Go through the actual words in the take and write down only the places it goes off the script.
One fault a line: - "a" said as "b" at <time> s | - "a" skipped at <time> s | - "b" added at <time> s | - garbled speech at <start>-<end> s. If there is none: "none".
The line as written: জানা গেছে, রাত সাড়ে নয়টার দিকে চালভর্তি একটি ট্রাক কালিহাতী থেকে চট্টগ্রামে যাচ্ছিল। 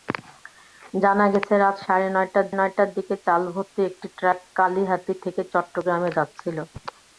- "নয়টার" added at 2.6 s